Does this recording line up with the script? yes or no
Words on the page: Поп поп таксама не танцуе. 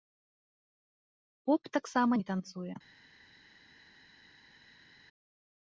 no